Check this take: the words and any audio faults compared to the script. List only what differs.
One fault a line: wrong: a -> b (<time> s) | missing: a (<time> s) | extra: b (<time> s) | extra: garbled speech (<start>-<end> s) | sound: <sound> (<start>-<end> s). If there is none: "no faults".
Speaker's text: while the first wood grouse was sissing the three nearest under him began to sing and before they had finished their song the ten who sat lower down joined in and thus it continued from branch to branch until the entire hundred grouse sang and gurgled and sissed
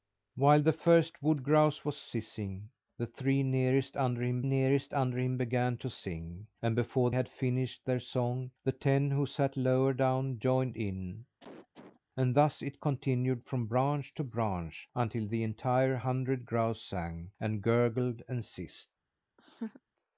extra: nearest under him (4.4 s)
missing: they (7.1 s)
sound: cough (11.4-12.0 s)
sound: laugh (19.4-19.8 s)